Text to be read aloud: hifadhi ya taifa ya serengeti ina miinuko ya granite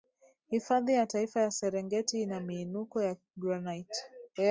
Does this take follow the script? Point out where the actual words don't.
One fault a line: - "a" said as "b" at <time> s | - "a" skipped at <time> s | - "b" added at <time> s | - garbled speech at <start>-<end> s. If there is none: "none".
none